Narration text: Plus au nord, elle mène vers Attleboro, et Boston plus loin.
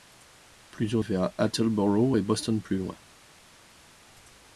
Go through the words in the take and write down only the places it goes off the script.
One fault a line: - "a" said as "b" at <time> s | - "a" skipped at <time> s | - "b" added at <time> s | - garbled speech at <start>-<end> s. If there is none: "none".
- "nord elle mène" skipped at 1.0 s